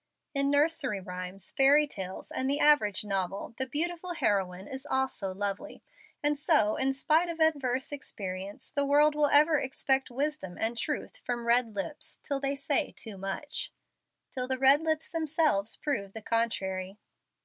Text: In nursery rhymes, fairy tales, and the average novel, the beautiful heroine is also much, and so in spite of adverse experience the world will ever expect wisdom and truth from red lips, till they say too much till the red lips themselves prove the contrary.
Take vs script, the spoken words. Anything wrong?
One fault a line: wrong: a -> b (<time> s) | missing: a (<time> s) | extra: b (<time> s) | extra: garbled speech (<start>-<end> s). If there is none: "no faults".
wrong: much -> lovely (5.3 s)